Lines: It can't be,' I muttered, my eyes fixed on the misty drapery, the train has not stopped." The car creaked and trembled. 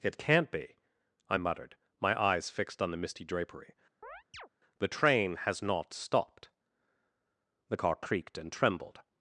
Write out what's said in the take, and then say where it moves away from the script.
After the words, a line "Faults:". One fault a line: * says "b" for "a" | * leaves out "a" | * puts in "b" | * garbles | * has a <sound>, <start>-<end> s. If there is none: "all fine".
It can't be,' I muttered, my eyes fixed on the misty drapery, the train has not stopped." The car creaked and trembled.
Faults:
* has a chirp, 4.0-4.5 s